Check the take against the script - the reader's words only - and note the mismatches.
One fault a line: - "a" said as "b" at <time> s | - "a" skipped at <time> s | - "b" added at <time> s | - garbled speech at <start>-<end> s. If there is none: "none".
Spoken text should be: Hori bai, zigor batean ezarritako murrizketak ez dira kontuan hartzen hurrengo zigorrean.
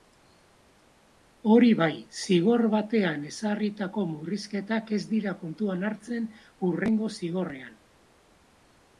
none